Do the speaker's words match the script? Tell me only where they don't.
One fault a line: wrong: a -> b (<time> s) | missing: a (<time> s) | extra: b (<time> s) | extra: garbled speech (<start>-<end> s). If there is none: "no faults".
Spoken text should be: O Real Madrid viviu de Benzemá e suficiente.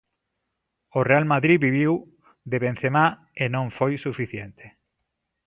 extra: non foi (3.5 s)